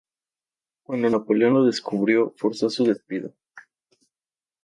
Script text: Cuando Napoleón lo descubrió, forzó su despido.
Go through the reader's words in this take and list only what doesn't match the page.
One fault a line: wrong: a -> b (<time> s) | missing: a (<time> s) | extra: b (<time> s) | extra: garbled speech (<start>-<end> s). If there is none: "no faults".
no faults